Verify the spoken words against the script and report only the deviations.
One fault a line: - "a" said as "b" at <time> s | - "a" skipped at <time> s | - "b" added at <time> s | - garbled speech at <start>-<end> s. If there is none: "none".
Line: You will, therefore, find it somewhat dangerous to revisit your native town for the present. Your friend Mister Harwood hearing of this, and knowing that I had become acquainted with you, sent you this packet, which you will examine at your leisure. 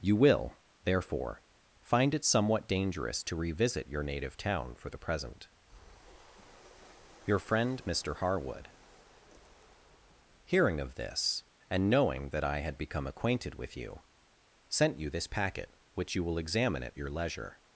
none